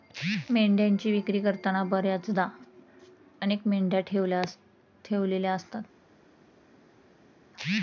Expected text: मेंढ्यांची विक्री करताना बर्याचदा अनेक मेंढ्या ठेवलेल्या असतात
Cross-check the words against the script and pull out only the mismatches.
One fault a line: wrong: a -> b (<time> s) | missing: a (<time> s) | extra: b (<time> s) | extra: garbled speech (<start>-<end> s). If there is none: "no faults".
no faults